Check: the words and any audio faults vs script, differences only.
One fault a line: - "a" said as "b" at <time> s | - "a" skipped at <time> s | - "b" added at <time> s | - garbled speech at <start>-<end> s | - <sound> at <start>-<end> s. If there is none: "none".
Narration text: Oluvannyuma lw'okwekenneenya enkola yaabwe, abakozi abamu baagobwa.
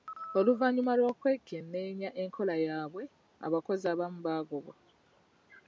none